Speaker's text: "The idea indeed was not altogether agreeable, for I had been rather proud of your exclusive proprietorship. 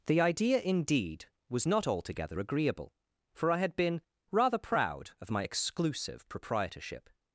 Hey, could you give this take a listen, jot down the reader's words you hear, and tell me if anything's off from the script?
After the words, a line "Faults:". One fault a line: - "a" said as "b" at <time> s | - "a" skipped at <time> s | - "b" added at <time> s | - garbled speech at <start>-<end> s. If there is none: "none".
"The idea indeed was not altogether agreeable, for I had been rather proud of my exclusive proprietorship.
Faults:
- "your" said as "my" at 5.3 s